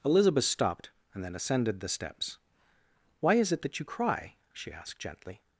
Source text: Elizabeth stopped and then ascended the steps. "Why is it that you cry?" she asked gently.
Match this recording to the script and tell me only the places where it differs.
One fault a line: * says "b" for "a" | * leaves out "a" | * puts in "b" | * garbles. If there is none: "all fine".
all fine